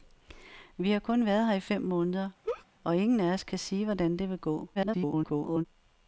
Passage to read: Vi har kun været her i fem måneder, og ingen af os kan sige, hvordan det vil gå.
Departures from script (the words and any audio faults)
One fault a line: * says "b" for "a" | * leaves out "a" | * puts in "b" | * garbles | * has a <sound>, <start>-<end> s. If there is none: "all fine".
* has a laugh, 2.4-2.7 s
* garbles